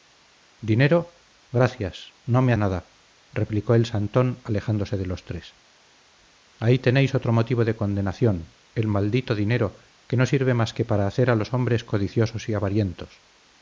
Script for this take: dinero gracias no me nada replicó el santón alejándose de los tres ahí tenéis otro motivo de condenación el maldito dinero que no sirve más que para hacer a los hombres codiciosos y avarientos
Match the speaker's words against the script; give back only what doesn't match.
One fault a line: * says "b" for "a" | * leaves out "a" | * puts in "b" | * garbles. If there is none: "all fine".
all fine